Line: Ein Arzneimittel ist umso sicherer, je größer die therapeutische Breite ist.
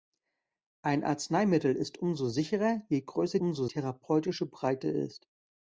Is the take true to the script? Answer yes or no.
no